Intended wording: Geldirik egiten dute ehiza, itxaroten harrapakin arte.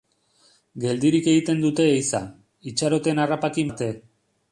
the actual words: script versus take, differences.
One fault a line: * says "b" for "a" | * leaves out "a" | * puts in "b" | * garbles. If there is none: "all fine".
all fine